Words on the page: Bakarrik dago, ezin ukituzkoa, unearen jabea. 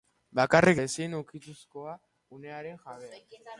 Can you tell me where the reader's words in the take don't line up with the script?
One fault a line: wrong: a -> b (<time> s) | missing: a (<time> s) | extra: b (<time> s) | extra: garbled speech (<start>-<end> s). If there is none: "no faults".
missing: dago (0.8 s)